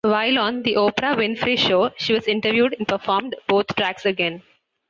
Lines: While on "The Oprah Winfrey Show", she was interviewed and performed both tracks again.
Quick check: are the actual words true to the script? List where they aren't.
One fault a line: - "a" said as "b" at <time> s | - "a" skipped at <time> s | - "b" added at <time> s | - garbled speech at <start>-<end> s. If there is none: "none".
none